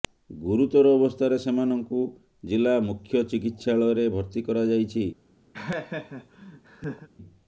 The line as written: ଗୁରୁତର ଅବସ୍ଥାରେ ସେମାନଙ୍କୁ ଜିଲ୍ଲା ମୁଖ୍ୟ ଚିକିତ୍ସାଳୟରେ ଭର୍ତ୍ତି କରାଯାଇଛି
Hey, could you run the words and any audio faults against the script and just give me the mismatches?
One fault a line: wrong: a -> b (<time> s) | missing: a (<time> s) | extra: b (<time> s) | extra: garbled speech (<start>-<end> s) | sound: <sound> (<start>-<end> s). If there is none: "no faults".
sound: laugh (5.5-7.1 s)